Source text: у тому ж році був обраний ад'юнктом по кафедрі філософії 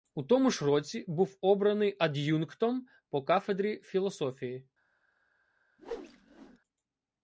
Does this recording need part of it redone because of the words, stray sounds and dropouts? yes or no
yes